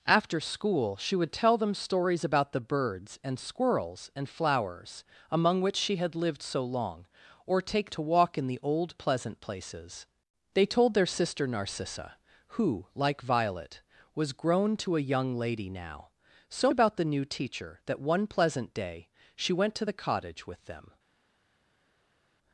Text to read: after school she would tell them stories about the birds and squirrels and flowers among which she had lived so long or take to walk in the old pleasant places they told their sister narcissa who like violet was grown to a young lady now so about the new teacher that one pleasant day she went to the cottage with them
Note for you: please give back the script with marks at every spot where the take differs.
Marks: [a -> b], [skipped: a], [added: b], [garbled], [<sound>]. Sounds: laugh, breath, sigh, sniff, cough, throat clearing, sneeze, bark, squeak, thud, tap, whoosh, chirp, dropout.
after school she would tell them stories about the birds and squirrels and flowers among which she had lived so long or take to walk in the old pleasant places they told their sister narcissa who like violet was grown to a young lady now so about the new teacher that one pleasant day she went to the cottage with them